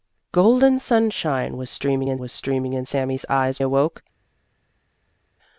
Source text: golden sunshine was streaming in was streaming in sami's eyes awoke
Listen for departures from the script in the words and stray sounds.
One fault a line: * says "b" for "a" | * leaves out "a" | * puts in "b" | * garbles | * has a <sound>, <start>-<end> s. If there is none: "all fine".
all fine